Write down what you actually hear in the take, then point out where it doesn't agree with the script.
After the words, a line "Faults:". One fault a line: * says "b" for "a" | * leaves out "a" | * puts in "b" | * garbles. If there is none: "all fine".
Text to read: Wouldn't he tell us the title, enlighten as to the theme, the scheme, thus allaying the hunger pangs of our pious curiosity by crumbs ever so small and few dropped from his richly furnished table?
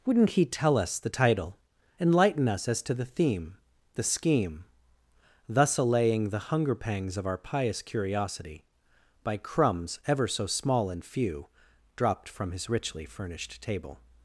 Wouldn't he tell us the title, enlighten us as to the theme, the scheme, thus allaying the hunger pangs of our pious curiosity by crumbs ever so small and few dropped from his richly furnished table?
Faults:
* puts in "us"